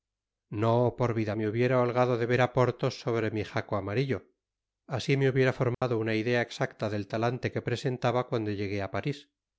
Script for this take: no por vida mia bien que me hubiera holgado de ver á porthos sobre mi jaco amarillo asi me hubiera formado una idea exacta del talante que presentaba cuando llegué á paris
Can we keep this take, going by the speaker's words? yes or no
no